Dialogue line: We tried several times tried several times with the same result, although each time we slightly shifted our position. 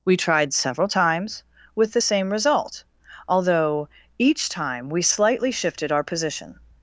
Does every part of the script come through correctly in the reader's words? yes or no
no